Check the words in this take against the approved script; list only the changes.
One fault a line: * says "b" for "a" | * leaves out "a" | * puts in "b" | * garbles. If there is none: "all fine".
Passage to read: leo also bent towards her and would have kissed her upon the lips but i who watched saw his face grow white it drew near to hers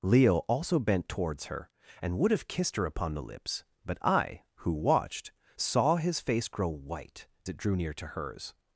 all fine